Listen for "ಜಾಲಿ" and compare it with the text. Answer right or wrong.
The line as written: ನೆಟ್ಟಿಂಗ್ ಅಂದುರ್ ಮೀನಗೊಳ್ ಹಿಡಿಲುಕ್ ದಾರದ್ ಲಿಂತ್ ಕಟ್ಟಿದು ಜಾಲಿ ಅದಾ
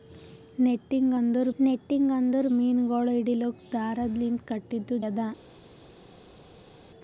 wrong